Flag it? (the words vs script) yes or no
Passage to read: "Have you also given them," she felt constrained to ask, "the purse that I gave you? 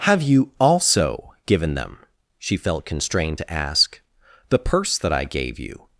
no